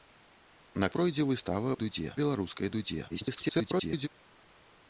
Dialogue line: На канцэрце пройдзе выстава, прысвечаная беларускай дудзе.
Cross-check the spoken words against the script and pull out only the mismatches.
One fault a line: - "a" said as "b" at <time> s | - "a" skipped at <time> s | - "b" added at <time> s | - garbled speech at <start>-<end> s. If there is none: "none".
- "канцэрце" skipped at 0.9 s
- "прысвечаная" said as "дудзе" at 1.8 s
- garbled speech at 3.1-4.1 s